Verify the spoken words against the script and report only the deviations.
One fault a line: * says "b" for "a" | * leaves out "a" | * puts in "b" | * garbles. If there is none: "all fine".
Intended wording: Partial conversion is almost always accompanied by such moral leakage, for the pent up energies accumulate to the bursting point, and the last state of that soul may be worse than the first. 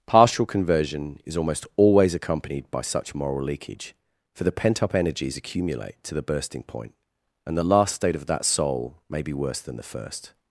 all fine